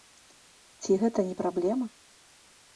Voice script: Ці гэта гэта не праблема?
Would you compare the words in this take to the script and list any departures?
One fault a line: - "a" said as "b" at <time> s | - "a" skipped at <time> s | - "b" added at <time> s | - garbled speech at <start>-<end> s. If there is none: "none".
- "гэта" skipped at 1.2 s